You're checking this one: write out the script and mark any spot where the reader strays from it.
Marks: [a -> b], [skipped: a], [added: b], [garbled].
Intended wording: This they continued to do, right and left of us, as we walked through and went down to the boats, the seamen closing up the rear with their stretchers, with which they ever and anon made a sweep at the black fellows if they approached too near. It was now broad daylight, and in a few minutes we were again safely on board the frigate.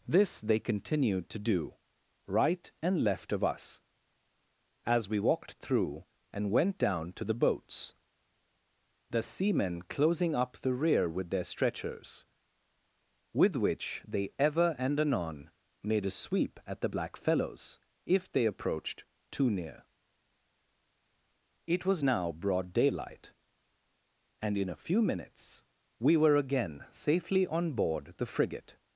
This they continued to do, right and left of us, as we walked through and went down to the boats, the seamen closing up the rear with their stretchers, with which they ever and anon made a sweep at the black fellows if they approached too near. It was now broad daylight, and in a few minutes we were again safely on board the frigate.